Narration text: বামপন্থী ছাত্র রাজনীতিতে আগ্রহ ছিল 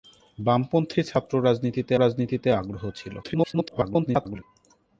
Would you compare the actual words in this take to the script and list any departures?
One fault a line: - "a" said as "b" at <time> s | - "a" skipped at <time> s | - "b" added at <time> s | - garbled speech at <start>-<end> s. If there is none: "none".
- "রাজনীতিতে" added at 2.0 s
- garbled speech at 3.2-4.4 s